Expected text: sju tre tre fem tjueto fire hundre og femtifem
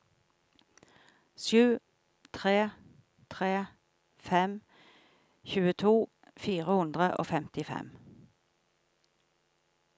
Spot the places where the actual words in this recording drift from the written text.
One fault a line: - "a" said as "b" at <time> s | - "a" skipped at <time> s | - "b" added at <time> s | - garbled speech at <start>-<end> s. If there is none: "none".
none